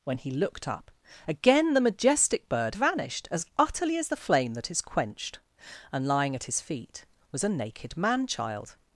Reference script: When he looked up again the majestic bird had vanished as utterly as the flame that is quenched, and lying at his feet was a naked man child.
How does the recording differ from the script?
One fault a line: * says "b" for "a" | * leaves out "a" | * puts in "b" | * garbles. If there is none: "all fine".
* leaves out "had"